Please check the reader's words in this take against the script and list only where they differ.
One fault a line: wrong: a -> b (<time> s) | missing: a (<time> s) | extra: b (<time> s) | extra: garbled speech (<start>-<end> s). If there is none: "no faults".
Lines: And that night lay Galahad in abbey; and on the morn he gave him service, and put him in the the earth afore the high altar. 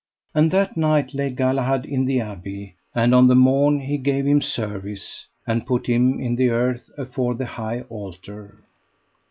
extra: the (2.0 s)
missing: the (6.5 s)